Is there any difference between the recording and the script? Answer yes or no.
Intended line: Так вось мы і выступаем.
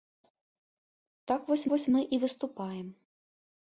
yes